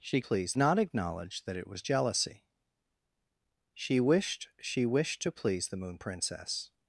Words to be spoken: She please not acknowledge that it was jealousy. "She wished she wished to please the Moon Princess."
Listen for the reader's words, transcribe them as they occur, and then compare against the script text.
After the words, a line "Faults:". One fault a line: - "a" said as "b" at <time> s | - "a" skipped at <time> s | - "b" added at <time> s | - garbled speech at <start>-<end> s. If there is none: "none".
She please not acknowledge that it was jealousy. "She wished she wished to please the Moon Princess."
Faults:
none